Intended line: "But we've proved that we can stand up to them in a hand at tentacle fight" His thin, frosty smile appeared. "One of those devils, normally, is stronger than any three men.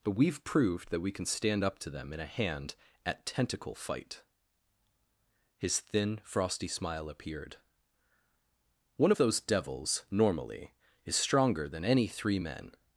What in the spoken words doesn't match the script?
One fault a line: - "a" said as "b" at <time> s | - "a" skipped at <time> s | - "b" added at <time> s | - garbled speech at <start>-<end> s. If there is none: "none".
none